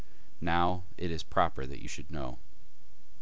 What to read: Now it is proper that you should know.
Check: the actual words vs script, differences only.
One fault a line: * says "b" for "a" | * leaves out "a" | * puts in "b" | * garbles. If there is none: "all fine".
all fine